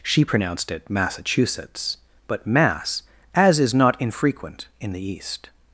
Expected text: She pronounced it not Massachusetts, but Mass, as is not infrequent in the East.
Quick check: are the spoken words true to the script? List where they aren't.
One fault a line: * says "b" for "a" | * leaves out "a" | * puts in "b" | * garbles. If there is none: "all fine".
* leaves out "not"